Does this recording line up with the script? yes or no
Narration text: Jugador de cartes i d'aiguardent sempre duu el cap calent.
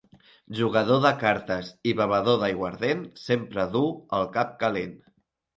no